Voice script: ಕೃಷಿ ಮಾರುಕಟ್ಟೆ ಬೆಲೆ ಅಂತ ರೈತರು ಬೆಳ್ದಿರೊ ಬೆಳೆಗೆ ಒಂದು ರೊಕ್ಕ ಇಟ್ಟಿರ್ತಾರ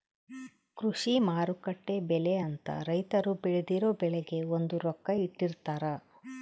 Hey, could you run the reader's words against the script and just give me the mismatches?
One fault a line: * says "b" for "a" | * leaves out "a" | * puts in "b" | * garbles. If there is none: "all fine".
all fine